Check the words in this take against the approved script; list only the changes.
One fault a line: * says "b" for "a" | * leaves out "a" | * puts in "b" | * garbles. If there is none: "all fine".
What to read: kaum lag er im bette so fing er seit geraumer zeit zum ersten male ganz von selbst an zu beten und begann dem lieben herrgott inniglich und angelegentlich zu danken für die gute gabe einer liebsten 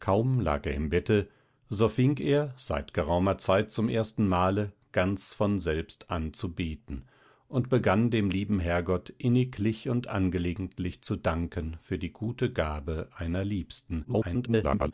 * garbles